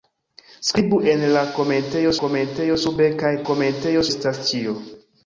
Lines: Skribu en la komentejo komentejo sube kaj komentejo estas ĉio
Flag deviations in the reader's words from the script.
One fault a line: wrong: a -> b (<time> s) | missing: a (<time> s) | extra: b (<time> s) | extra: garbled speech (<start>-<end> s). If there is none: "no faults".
no faults